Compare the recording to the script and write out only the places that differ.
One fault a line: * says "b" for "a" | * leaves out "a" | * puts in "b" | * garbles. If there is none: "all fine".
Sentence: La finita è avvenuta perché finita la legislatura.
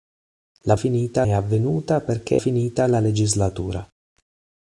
all fine